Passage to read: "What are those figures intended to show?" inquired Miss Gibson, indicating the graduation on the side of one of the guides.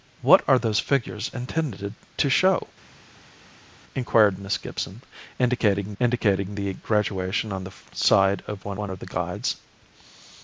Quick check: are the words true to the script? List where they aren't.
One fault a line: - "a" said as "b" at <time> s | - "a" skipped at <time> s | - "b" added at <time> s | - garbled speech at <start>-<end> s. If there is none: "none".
- "indicating" added at 6.0 s
- "one" added at 8.8 s